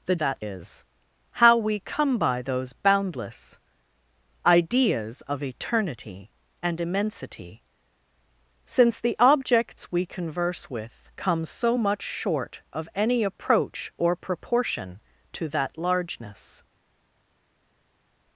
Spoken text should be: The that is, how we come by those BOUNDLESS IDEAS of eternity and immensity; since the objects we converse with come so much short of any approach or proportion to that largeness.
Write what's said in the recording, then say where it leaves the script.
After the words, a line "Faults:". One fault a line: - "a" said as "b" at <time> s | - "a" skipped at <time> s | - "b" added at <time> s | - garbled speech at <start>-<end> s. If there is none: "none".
The that is, how we come by those BOUNDLESS IDEAS of eternity and immensity; since the objects we converse with come so much short of any approach or proportion to that largeness.
Faults:
none